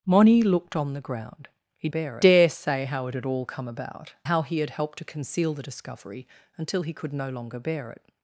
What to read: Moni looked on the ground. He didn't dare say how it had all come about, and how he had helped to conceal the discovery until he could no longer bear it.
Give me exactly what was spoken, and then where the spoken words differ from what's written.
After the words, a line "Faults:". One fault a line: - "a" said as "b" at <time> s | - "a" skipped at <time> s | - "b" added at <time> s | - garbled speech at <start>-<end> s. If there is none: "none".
Moni looked on the ground. He bear dare say how it had all come about, how he had helped to conceal the discovery until he could no longer bear it.
Faults:
- "didn't" said as "bear" at 1.9 s
- "and" skipped at 4.1 s